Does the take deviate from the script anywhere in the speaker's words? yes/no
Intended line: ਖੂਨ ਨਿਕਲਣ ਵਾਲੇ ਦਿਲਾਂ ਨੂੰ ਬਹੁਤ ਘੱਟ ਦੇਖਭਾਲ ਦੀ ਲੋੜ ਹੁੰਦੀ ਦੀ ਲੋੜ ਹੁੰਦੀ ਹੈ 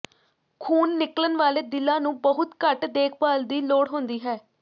yes